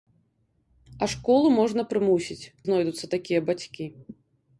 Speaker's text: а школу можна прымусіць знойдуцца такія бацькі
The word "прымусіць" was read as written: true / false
true